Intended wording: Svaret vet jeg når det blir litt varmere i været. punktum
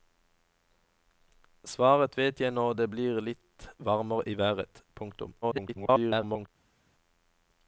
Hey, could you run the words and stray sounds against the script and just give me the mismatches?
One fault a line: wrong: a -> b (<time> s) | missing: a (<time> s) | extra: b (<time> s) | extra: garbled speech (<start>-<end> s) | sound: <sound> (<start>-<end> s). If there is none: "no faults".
extra: garbled speech (5.4-6.5 s)